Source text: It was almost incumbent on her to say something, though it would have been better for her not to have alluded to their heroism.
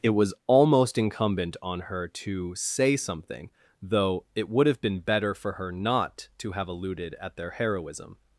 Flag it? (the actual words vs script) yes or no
yes